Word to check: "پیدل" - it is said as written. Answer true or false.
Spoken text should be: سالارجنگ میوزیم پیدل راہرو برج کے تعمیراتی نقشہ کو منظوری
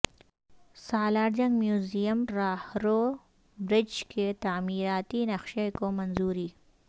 false